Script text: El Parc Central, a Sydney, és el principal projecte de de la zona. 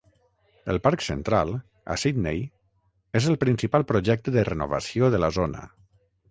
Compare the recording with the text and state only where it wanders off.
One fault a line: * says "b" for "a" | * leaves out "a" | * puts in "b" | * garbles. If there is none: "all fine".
* puts in "renovació"